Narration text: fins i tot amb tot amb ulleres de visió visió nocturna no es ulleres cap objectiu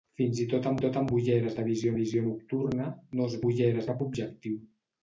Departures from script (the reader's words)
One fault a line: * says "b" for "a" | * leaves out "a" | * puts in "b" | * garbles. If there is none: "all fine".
all fine